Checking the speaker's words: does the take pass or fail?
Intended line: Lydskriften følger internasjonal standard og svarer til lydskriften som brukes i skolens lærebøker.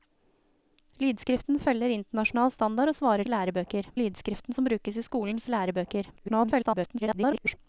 fail